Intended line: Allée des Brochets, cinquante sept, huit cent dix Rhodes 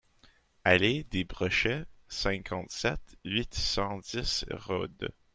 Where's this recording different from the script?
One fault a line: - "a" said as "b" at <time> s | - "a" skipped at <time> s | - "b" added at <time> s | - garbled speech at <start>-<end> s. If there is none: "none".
none